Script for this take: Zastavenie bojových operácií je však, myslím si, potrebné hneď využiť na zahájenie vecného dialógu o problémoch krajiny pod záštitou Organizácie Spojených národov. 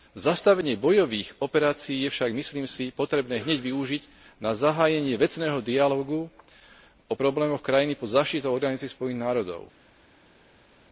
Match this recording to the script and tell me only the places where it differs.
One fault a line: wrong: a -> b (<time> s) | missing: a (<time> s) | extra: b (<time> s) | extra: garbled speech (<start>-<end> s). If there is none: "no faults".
no faults